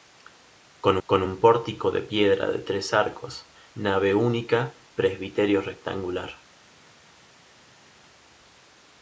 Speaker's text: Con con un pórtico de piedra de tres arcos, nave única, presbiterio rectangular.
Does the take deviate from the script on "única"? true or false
false